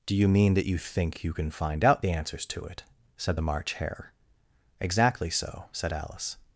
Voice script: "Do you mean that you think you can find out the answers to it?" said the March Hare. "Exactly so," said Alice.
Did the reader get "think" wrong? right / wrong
right